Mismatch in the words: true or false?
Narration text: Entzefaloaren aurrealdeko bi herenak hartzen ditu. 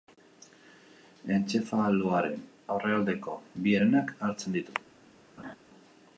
false